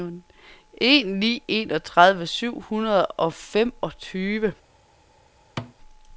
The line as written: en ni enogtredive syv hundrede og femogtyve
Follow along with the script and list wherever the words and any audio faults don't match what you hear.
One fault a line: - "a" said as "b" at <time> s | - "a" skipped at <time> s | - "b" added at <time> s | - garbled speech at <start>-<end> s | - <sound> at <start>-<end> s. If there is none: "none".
- thud at 5.6-5.7 s